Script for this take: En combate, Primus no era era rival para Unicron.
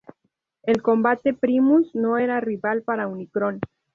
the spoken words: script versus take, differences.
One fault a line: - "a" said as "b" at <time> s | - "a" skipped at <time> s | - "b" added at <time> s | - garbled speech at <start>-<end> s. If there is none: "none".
- "era" skipped at 2.4 s